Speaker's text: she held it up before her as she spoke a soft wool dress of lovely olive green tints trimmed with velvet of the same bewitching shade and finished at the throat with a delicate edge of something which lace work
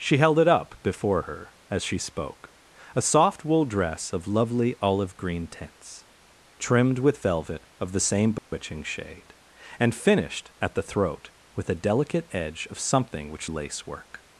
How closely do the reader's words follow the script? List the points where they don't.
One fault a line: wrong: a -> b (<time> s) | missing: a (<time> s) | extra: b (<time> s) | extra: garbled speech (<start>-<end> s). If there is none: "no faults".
no faults